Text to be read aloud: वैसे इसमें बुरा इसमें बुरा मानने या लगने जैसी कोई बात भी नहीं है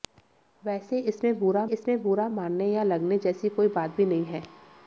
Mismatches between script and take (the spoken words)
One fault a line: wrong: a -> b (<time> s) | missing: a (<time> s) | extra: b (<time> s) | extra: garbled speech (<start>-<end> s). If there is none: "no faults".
no faults